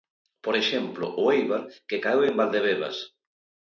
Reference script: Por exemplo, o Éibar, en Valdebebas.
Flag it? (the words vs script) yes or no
yes